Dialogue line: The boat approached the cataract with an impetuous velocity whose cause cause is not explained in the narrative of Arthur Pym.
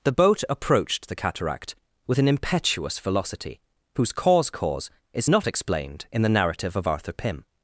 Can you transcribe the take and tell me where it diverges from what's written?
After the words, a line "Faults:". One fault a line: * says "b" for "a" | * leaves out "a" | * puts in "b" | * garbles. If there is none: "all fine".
The boat approached the cataract with an impetuous velocity whose cause cause is not explained in the narrative of Arthur Pym.
Faults:
all fine